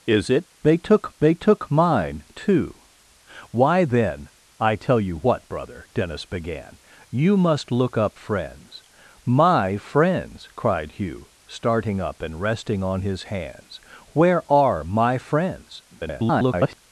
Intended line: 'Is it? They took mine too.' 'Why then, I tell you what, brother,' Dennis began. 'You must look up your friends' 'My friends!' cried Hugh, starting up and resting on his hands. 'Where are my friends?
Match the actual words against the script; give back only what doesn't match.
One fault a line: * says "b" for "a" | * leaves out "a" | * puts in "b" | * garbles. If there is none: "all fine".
* puts in "they took"
* leaves out "your"
* garbles